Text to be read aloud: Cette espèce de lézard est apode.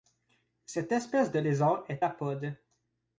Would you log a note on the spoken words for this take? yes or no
no